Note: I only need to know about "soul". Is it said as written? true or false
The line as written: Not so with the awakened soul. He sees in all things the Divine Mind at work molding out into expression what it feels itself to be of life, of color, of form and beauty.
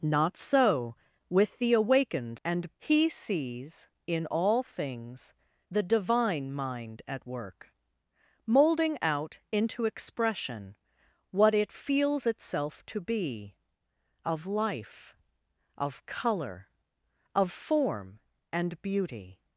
false